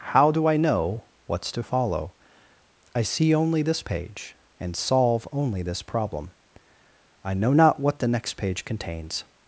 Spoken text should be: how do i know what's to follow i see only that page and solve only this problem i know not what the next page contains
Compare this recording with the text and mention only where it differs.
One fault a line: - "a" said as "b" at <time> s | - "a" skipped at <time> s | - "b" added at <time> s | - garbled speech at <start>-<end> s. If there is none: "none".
- "that" said as "this" at 3.6 s